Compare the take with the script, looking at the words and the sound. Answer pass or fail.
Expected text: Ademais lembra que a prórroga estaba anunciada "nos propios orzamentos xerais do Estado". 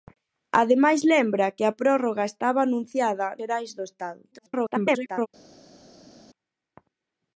fail